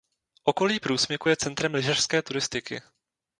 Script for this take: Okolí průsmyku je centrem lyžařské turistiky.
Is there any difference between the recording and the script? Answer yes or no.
no